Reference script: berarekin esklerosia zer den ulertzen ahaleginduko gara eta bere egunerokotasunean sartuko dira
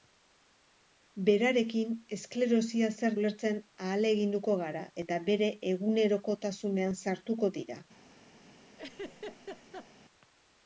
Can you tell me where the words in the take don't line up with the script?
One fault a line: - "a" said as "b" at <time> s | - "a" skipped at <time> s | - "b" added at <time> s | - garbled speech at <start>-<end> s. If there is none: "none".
- "den" skipped at 3.2 s